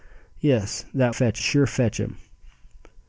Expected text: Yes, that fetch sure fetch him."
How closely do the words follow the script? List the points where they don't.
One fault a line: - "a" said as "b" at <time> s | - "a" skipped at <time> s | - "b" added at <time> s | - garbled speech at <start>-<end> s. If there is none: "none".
none